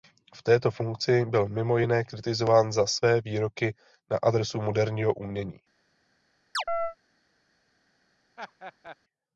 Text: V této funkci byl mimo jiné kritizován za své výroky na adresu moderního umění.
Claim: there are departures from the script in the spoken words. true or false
false